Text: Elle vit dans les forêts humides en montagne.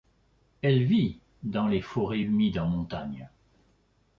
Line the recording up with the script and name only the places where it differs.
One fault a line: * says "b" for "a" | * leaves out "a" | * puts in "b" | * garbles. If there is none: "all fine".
all fine